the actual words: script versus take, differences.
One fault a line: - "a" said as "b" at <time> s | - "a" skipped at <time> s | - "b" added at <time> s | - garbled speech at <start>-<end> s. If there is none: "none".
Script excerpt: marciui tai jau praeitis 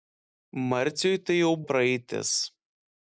none